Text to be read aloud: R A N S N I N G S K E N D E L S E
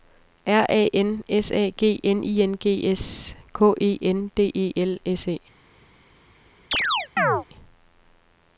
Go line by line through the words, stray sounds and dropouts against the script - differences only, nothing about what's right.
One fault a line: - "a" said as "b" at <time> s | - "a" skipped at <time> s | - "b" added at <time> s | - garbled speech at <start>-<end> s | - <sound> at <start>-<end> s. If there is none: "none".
- "A G" added at 1.5 s
- chirp at 6.7-7.4 s